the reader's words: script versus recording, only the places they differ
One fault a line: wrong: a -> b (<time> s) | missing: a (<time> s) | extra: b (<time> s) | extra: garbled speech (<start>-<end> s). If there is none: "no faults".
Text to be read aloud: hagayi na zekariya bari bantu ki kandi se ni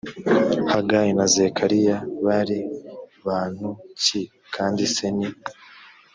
no faults